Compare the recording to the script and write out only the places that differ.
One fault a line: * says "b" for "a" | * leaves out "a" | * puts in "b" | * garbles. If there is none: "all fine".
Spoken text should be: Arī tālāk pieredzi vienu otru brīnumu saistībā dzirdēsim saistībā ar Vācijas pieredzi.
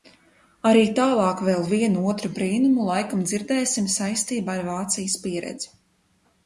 * says "vēl" for "pieredzi"
* says "laikam" for "saistībā"